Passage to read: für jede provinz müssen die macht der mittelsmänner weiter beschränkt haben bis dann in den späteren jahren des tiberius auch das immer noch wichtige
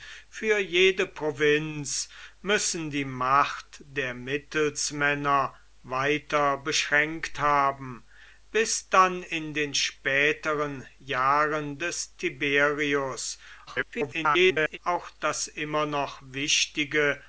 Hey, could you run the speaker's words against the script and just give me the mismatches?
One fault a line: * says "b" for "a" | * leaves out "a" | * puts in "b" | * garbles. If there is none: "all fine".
* garbles